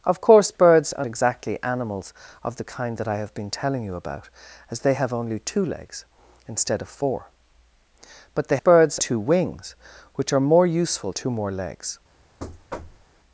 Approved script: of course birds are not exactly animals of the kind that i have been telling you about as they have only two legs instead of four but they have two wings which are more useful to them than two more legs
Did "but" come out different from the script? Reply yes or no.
no